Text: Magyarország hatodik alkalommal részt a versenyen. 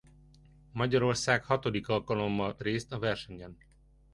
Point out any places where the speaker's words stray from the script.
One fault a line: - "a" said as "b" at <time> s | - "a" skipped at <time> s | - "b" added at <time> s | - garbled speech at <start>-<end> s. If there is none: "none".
none